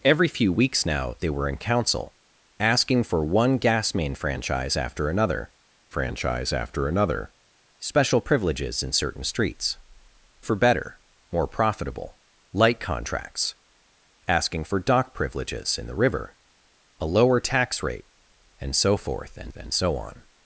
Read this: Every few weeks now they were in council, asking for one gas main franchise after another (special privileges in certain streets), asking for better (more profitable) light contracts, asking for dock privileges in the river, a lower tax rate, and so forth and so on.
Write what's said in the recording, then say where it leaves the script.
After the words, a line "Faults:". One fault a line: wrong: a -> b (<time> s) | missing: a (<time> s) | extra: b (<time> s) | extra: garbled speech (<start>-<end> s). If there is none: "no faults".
Every few weeks now they were in council, asking for one gas main franchise after another franchise after another (special privileges in certain streets), for better (more profitable) light contracts, asking for dock privileges in the river, a lower tax rate, and so forth and and so on.
Faults:
extra: franchise after another (5.9 s)
missing: asking (9.8 s)
extra: and (19.5 s)